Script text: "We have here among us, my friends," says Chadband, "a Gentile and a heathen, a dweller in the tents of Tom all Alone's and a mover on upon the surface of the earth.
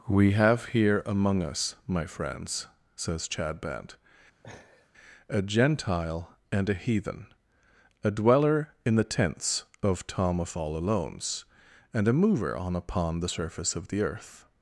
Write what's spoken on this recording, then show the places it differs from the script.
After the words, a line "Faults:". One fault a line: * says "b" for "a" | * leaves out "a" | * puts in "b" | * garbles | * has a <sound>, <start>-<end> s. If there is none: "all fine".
"We have here among us, my friends," says Chadband, "a Gentile and a heathen, a dweller in the tents of Tom of all Alone's and a mover on upon the surface of the earth.
Faults:
* has a laugh, 4.4-4.9 s
* puts in "of"